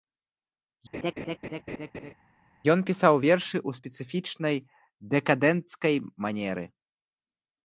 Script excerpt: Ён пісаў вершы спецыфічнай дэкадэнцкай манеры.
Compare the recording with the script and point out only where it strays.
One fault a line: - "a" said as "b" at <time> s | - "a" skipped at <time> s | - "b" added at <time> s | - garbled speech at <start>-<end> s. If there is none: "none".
- "ў" added at 3.7 s